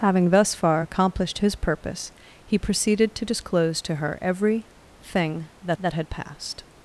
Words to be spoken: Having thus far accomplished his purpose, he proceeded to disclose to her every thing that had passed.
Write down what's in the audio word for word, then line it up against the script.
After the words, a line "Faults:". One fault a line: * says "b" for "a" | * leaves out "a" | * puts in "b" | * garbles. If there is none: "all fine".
Having thus far accomplished his purpose, he proceeded to disclose to her every thing that that had passed.
Faults:
* puts in "that"